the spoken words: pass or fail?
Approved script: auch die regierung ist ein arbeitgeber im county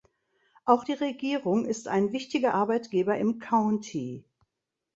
fail